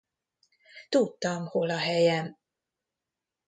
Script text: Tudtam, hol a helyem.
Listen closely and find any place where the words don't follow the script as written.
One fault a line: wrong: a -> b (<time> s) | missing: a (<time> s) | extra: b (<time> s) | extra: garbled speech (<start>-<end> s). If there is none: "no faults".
no faults